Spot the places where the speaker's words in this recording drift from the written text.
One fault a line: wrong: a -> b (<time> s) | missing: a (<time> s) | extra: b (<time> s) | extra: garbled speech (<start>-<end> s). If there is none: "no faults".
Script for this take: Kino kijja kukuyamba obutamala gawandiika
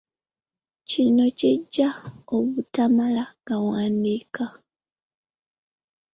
missing: kukuyamba (1.9 s)